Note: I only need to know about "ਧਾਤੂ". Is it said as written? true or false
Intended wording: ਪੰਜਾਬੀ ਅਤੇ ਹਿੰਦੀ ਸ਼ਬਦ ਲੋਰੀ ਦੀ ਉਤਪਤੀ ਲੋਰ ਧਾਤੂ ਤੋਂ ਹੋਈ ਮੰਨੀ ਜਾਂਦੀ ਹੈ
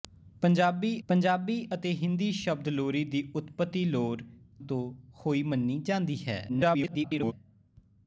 false